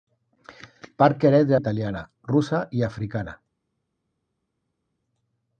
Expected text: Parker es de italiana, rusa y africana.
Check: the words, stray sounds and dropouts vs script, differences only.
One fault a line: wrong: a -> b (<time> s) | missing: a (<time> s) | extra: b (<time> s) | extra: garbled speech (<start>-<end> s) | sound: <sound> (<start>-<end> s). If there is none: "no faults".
no faults